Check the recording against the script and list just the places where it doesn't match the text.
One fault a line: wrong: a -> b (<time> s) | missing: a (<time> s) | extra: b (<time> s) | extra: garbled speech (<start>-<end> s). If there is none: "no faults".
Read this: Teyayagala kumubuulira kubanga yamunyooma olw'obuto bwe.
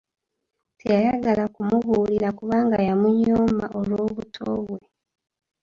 no faults